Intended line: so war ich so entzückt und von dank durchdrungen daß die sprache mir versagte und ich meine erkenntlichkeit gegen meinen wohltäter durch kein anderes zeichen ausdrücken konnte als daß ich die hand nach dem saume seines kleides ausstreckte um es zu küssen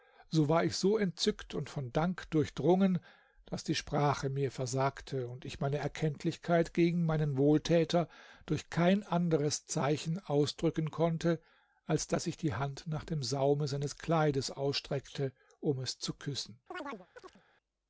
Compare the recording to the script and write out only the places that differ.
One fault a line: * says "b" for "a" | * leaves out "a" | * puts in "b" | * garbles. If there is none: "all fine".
all fine